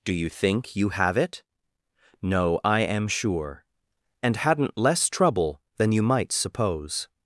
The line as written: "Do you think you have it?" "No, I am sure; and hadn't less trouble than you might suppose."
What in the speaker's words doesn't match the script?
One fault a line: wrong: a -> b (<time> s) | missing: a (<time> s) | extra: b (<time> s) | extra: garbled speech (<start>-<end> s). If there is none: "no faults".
no faults